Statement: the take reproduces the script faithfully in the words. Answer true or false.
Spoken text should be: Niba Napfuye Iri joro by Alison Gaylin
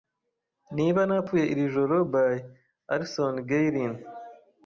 true